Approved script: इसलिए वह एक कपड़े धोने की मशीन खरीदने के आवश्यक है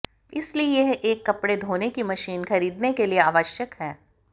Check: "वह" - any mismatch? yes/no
yes